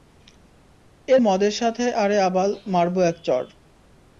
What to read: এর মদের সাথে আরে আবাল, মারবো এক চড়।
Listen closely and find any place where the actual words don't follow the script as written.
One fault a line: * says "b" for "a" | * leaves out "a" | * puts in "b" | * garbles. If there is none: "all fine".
all fine